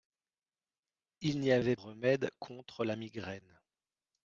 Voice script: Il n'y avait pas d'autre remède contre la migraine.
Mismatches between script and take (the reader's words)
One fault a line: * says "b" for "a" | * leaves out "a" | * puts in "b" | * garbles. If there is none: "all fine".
* leaves out "pas d'autre"